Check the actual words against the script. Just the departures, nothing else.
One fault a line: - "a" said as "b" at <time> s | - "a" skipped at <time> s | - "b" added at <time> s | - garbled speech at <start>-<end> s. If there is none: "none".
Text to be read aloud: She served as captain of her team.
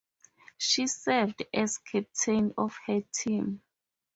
none